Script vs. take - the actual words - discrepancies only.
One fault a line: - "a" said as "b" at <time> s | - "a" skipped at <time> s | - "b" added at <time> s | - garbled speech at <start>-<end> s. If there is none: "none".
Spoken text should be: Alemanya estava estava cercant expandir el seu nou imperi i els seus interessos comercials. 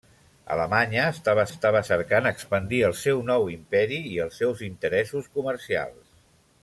none